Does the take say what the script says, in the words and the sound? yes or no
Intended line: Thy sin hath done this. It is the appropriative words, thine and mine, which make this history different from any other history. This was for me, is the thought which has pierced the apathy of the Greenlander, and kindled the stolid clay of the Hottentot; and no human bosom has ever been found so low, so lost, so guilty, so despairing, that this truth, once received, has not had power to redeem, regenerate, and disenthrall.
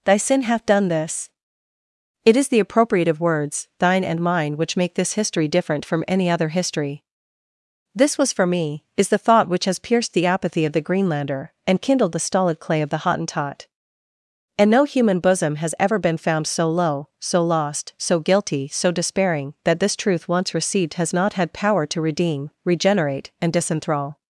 yes